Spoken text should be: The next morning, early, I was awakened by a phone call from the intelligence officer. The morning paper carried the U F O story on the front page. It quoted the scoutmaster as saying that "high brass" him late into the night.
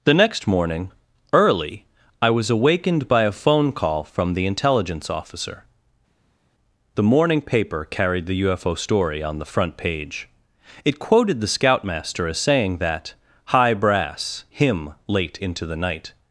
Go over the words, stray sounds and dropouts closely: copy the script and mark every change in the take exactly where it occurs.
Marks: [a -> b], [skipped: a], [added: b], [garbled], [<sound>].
The next morning, early, I was awakened by a phone call from the intelligence officer. The morning paper carried the U F O story on the front page. It quoted the scoutmaster as saying that "high brass" him late into the night.